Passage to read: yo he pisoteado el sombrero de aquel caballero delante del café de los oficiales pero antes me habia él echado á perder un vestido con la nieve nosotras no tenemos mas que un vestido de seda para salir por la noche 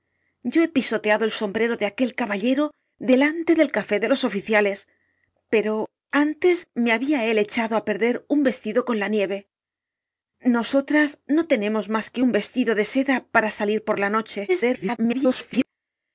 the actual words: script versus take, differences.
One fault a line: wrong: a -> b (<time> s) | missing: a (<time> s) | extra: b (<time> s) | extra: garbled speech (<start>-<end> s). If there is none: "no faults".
extra: garbled speech (14.5-15.7 s)